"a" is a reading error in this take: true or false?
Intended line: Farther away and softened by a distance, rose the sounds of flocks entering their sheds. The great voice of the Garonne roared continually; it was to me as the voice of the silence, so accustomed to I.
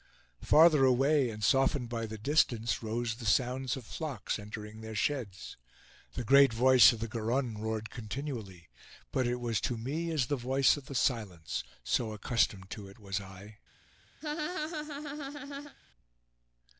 true